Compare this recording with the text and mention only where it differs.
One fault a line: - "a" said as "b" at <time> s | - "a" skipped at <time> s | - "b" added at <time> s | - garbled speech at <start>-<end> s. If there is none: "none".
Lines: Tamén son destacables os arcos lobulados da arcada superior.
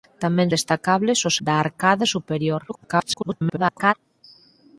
- "son" skipped at 0.5 s
- "arcos lobulados" skipped at 1.4 s
- garbled speech at 2.7-3.9 s